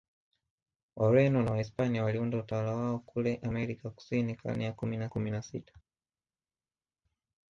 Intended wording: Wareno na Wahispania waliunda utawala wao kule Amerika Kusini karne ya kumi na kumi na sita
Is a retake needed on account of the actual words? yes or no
no